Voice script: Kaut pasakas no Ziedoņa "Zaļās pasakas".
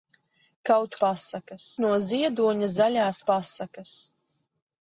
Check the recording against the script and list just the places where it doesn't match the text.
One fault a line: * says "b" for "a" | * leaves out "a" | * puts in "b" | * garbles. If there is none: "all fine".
all fine